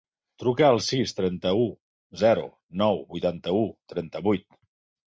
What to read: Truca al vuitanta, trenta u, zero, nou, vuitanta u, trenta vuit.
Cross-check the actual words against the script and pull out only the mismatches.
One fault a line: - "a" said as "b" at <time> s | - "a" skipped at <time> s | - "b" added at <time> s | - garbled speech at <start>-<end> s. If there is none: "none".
- "vuitanta" said as "sis" at 0.8 s